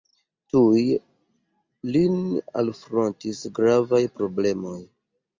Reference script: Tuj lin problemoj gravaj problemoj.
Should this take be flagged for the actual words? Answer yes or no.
yes